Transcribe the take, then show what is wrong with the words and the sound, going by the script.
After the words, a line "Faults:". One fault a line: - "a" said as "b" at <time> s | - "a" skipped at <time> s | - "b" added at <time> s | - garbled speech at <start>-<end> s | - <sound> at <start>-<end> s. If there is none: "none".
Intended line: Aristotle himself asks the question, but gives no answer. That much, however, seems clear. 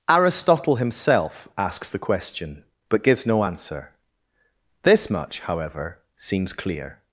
Aristotle himself asks the question, but gives no answer. This much, however, seems clear.
Faults:
- "That" said as "This" at 4.8 s